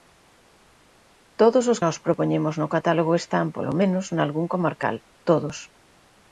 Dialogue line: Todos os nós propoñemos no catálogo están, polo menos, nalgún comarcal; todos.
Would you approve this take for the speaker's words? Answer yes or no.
yes